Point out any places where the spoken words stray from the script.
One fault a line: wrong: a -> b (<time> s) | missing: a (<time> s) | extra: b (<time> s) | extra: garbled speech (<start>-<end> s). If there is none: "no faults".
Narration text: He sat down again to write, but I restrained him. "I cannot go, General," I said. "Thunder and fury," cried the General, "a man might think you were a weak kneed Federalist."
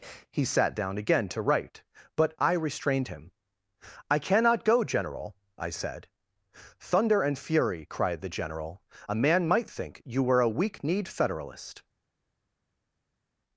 no faults